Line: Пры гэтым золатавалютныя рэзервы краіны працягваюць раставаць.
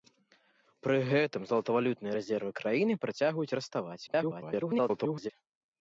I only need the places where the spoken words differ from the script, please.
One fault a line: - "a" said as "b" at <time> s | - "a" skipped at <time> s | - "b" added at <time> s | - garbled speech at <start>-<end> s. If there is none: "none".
- garbled speech at 4.1-5.3 s